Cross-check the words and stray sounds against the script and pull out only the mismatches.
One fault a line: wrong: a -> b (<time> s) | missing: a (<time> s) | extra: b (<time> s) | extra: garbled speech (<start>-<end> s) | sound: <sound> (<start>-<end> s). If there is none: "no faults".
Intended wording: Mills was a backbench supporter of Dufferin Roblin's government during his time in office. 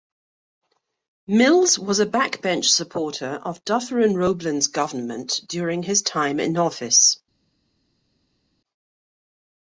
no faults